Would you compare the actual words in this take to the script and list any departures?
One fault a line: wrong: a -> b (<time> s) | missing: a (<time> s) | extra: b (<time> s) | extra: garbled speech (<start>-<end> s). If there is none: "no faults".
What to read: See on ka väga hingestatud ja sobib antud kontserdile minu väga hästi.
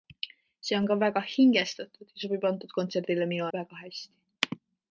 no faults